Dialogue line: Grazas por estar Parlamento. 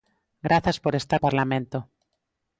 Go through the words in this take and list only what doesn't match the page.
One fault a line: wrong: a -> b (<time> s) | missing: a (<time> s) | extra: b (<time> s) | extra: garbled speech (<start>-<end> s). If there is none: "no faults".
no faults